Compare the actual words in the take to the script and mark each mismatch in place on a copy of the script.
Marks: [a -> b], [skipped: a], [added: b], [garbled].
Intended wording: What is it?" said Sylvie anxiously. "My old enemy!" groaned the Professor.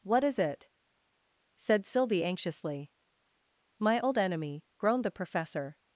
What is it?" said Sylvie anxiously. "My old enemy!" groaned the Professor.